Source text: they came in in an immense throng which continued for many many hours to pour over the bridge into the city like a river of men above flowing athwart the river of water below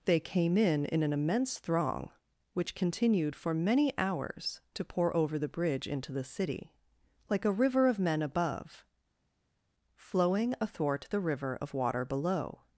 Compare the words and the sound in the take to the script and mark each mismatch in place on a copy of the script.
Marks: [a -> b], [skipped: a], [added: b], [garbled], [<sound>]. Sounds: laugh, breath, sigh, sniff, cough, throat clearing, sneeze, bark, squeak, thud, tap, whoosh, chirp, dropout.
they came in in an immense throng which continued for many [skipped: many] hours to pour over the bridge into the city like a river of men above flowing athwart the river of water below